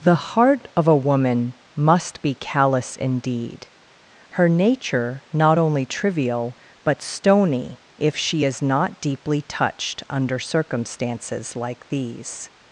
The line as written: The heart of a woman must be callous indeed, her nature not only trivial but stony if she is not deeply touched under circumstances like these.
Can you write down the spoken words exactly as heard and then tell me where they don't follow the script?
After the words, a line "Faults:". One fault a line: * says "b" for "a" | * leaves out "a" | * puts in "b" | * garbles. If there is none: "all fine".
The heart of a woman must be callous indeed, her nature not only trivial but stony if she is not deeply touched under circumstances like these.
Faults:
all fine